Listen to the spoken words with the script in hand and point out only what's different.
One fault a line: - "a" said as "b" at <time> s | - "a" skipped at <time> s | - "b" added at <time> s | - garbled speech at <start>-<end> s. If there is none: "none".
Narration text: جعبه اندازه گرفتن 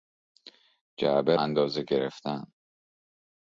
none